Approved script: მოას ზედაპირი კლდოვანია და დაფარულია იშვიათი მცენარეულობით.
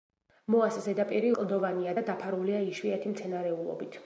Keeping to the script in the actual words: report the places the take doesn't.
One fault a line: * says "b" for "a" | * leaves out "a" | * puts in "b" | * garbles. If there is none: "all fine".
all fine